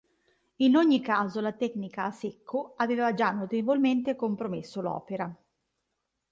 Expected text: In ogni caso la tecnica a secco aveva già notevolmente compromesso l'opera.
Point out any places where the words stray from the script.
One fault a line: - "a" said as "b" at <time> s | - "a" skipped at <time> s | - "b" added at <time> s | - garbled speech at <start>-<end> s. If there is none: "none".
none